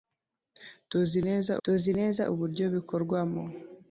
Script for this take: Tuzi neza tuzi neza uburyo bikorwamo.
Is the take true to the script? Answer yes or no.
yes